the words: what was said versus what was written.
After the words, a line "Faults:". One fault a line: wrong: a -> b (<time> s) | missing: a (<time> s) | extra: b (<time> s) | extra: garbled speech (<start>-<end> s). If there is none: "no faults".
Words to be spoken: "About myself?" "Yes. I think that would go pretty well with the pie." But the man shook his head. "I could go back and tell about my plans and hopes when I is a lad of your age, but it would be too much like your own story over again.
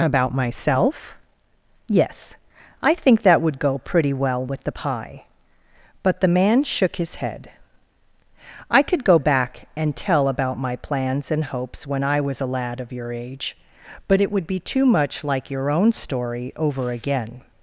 "About myself?" "Yes. I think that would go pretty well with the pie." But the man shook his head. "I could go back and tell about my plans and hopes when I was a lad of your age, but it would be too much like your own story over again.
Faults:
wrong: is -> was (12.2 s)